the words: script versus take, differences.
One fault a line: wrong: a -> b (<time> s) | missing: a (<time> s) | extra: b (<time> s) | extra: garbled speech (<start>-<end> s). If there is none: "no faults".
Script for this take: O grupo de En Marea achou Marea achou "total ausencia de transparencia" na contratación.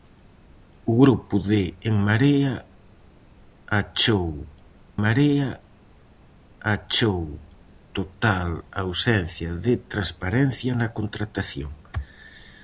no faults